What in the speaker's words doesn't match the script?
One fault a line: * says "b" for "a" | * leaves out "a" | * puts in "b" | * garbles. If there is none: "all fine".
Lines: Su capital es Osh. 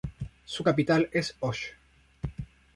all fine